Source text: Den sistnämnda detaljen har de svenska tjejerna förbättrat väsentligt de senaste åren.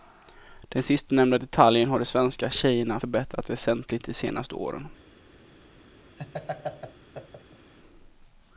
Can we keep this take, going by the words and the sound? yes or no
no